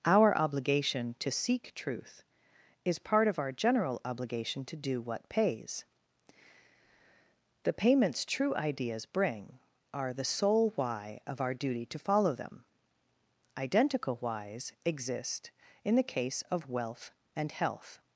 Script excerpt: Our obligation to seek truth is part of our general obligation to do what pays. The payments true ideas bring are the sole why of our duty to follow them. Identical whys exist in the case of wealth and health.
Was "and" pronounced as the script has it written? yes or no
yes